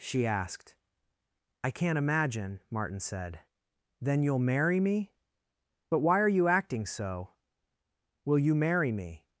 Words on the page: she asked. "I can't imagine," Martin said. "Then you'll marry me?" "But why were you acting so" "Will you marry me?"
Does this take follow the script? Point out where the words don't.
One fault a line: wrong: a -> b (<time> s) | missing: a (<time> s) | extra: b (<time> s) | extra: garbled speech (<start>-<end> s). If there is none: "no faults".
wrong: were -> are (6.2 s)